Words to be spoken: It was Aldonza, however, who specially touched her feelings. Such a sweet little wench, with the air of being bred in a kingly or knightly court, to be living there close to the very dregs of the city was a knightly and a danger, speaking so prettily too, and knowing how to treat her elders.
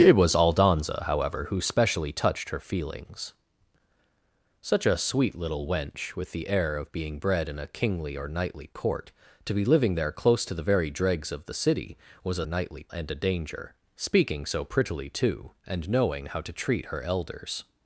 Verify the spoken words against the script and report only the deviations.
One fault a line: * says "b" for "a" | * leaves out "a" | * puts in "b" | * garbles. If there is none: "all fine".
all fine